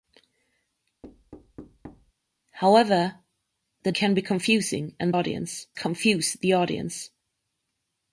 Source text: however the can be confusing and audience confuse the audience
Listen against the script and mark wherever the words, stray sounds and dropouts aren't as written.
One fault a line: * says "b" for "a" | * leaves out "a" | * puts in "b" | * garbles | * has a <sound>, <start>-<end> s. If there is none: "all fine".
* has a thud, 1.0-2.1 s